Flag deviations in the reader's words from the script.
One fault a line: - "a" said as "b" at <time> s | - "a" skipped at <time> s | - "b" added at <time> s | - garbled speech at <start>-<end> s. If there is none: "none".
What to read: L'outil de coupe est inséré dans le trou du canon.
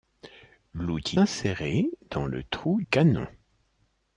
- "de coupe est" skipped at 1.2 s
- "du" skipped at 2.8 s